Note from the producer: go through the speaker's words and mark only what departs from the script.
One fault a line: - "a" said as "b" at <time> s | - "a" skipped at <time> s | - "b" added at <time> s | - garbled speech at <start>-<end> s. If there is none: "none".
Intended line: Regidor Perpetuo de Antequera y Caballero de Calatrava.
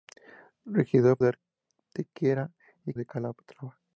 - "Perpetuo" skipped at 1.2 s
- "Caballero" skipped at 2.9 s